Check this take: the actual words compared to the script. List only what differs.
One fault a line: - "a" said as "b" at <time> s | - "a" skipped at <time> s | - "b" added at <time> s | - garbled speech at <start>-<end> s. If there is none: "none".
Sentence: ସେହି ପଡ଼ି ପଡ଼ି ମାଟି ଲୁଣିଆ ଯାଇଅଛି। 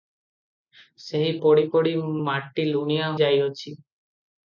none